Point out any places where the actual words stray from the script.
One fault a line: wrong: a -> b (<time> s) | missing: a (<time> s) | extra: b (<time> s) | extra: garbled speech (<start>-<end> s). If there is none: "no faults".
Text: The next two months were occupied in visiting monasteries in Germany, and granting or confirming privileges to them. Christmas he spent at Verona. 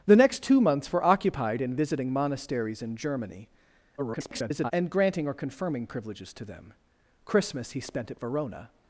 extra: garbled speech (4.0-4.7 s)